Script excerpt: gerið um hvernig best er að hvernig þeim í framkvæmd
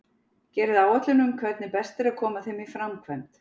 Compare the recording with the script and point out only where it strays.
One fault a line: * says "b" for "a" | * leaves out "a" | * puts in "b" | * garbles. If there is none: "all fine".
* puts in "áætlun"
* says "koma" for "hvernig"